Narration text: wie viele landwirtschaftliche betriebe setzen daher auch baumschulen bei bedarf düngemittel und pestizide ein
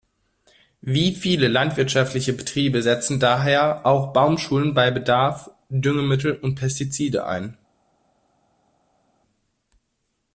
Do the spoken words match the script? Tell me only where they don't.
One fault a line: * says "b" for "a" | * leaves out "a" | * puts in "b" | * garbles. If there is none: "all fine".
all fine